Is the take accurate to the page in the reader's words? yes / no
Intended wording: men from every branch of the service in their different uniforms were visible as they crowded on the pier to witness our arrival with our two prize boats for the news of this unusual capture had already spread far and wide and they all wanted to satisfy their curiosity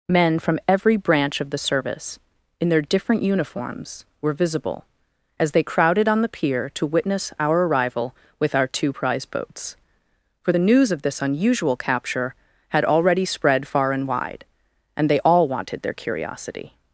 no